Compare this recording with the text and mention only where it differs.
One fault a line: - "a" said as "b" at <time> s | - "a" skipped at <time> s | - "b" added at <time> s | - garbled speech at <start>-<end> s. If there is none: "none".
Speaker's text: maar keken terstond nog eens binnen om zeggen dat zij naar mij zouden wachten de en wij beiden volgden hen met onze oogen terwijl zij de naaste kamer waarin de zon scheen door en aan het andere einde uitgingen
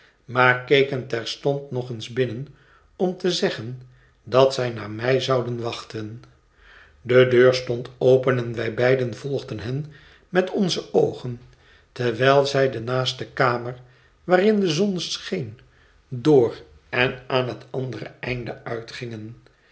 - "te" added at 3.2 s
- "deur stond open" added at 7.3 s